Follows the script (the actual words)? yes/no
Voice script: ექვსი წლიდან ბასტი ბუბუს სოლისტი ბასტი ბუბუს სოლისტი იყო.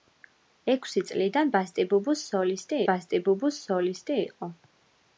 yes